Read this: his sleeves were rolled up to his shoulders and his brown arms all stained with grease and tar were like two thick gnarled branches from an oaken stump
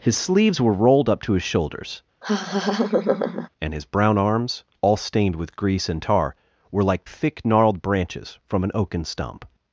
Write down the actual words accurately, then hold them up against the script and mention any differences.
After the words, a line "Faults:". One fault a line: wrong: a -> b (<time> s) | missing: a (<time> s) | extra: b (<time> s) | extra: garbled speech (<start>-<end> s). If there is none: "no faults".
his sleeves were rolled up to his shoulders and his brown arms all stained with grease and tar were like thick gnarled branches from an oaken stump
Faults:
missing: two (7.1 s)